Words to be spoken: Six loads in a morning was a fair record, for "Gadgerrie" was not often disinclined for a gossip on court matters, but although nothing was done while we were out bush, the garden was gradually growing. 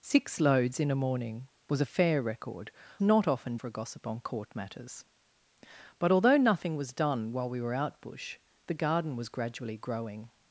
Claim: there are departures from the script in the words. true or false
true